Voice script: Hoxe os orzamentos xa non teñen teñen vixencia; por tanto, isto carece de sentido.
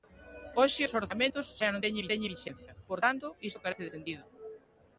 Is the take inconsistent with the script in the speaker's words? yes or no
no